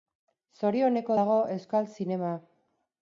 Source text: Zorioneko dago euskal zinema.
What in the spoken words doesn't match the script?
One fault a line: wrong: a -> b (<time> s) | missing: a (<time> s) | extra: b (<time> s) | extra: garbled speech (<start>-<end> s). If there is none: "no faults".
no faults